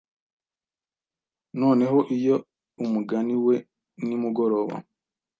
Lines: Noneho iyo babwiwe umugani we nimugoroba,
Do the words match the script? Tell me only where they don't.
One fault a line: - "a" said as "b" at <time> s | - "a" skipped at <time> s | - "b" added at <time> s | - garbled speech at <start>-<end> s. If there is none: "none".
- "babwiwe" skipped at 2.4 s